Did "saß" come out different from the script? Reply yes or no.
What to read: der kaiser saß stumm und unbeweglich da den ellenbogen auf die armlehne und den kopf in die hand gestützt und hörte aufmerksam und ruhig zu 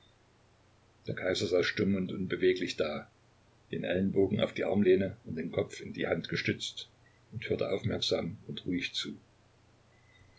no